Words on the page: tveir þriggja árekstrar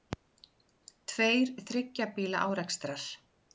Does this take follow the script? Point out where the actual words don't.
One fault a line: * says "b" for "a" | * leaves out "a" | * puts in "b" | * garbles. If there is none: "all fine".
* puts in "bíla"